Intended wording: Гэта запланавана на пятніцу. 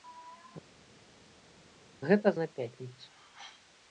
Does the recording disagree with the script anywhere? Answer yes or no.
yes